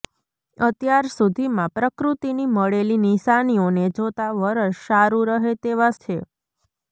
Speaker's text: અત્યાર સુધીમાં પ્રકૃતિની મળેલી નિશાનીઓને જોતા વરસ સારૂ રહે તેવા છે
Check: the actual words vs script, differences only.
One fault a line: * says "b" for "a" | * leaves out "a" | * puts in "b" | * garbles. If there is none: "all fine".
all fine